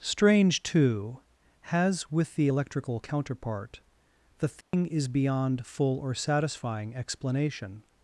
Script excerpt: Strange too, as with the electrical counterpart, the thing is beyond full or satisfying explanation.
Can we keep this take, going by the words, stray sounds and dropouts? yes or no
no